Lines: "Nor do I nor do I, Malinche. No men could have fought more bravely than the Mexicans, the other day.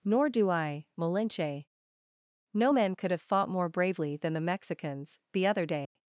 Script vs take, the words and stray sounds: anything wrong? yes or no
yes